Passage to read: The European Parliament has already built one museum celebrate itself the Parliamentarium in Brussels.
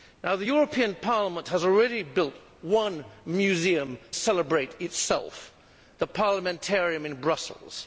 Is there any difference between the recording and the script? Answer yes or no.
no